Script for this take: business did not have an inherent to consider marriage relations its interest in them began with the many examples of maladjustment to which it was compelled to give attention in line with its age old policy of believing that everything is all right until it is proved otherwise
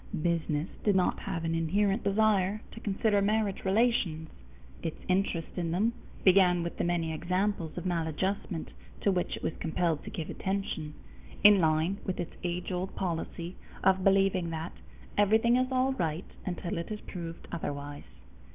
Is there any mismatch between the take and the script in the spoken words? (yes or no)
yes